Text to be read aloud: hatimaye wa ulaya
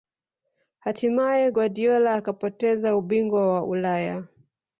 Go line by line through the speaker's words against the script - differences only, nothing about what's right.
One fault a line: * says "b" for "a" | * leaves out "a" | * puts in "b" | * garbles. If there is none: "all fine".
* puts in "guardiola akapoteza ubingwa"